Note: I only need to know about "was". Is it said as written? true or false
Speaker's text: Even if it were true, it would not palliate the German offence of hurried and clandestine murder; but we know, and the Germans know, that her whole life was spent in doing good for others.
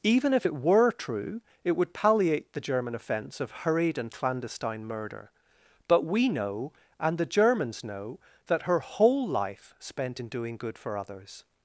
false